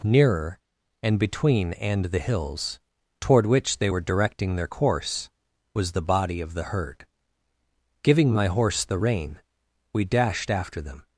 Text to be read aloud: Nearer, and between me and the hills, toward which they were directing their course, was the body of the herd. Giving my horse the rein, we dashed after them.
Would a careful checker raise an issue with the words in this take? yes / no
yes